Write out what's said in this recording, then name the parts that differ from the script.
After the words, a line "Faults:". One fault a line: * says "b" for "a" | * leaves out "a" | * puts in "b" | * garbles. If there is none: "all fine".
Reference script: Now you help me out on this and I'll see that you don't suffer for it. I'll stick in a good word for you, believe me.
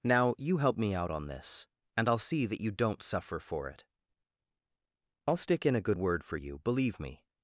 Now you help me out on this and I'll see that you don't suffer for it. I'll stick in a good word for you, believe me.
Faults:
all fine